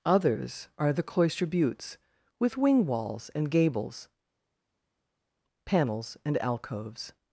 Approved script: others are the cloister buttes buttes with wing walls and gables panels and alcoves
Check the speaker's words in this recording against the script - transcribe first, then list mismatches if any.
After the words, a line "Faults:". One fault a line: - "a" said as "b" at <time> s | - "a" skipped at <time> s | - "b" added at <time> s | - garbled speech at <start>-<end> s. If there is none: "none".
others are the cloister buttes with wing walls and gables panels and alcoves
Faults:
- "buttes" skipped at 2.0 s